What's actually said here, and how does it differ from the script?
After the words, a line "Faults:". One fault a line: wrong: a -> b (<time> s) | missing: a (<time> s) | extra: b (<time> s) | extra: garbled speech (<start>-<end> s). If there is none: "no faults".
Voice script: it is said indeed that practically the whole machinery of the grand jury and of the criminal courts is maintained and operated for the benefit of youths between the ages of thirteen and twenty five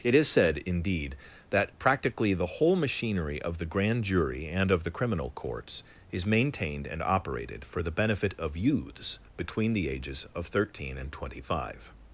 it is said indeed that practically the whole machinery of the grand jury and of the criminal courts is maintained and operated for the benefit of youths between the ages of thirteen and twenty five
Faults:
no faults